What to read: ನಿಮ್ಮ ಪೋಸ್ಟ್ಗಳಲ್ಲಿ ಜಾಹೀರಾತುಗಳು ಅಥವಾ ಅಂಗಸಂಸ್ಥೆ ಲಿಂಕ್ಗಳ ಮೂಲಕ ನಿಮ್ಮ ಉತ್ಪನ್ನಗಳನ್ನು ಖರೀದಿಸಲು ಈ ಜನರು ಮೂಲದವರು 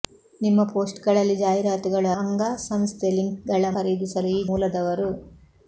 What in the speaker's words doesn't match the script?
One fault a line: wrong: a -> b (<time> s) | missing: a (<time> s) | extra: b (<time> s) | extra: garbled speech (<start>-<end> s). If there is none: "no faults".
missing: ಅಥವಾ (2.1 s)
missing: ಮೂಲಕ ನಿಮ್ಮ ಉತ್ಪನ್ನಗಳನ್ನು (3.7 s)
missing: ಜನರು (4.4 s)